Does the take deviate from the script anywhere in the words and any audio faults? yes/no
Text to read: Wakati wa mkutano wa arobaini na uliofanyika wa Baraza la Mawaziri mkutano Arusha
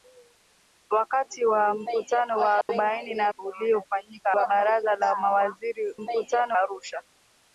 yes